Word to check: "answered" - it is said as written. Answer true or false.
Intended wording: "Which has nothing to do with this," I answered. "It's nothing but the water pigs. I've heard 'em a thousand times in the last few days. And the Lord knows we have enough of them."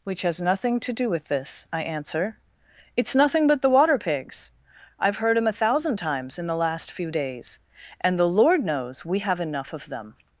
false